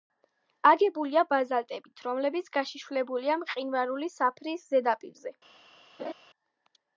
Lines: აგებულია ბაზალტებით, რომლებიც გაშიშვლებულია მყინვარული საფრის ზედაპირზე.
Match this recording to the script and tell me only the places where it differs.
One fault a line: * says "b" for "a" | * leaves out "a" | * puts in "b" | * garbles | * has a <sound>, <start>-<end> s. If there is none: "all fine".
* has a laugh, 6.0-6.1 s